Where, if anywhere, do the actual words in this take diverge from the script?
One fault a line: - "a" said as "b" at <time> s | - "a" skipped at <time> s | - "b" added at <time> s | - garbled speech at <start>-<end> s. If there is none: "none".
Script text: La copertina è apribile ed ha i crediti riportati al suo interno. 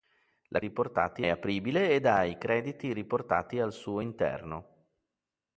- "copertina" said as "riportati" at 0.6 s